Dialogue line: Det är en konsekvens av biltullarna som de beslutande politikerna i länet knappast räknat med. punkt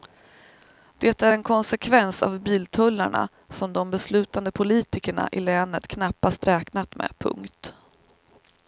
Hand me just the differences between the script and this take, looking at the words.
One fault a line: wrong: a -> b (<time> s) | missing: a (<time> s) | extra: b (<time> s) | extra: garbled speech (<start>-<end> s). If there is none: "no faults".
no faults